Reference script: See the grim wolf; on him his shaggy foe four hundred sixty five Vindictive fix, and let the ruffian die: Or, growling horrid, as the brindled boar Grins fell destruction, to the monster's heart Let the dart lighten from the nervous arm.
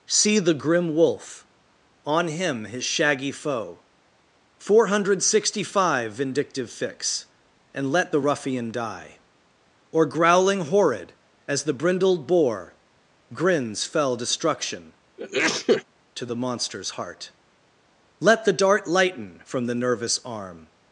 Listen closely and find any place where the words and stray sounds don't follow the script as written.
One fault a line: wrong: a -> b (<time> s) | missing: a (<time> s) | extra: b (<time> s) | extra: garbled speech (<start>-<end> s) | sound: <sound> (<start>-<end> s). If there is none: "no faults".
sound: sneeze (15.2-15.8 s)